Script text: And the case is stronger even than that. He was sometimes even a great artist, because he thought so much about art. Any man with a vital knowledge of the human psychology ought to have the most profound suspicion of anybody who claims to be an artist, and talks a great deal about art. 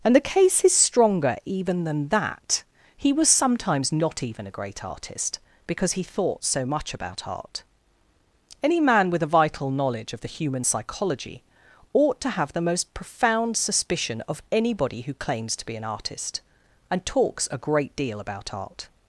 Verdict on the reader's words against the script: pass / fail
fail